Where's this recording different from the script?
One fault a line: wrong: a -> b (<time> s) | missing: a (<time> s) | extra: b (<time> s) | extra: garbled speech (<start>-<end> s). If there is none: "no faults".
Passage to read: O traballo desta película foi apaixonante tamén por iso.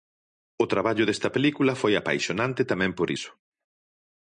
no faults